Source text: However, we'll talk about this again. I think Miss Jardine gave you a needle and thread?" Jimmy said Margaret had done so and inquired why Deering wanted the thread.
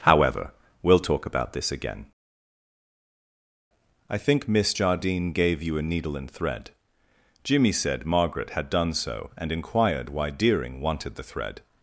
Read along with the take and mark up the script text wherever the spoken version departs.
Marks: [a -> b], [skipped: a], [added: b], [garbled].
However, we'll talk about this again. I think Miss Jardine gave you a needle and thread?" Jimmy said Margaret had done so and inquired why Deering wanted the thread.